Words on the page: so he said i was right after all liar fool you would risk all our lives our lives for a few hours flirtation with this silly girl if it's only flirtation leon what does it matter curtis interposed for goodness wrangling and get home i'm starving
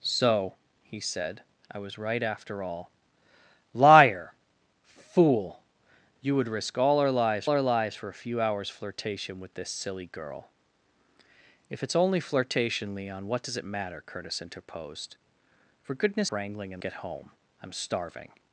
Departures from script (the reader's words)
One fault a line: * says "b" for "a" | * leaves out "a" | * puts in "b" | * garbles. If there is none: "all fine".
all fine